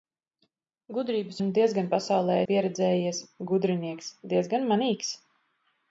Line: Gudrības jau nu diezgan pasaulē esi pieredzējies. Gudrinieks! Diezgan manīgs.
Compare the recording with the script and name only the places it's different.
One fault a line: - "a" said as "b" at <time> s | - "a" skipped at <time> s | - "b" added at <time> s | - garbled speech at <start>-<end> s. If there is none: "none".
- "jau" skipped at 1.4 s
- "esi" skipped at 2.4 s